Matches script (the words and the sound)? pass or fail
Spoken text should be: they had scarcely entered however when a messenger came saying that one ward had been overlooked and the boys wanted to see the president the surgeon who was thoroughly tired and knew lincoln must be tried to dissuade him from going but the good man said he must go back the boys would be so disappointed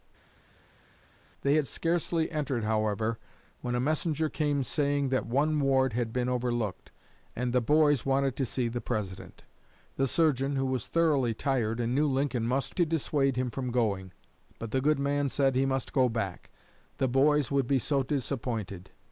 fail